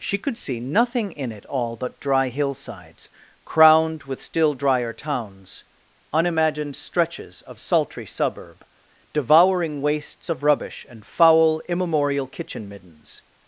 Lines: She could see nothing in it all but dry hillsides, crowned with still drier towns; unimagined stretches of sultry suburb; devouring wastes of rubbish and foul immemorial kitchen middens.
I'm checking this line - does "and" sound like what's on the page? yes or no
yes